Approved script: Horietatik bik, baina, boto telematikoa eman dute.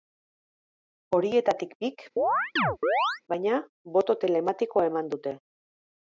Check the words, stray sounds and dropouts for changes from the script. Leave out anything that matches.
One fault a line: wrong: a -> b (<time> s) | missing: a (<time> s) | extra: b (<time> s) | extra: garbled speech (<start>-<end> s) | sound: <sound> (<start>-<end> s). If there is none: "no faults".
sound: chirp (2.2-3.2 s)